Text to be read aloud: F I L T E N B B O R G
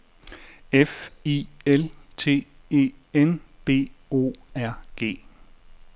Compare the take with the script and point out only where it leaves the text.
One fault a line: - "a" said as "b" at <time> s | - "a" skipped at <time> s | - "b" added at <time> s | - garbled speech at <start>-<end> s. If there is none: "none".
- "B" skipped at 3.9 s